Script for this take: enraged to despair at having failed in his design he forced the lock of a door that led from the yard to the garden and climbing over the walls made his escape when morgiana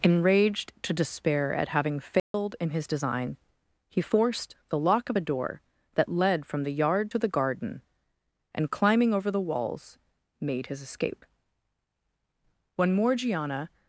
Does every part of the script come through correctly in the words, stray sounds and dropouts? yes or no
no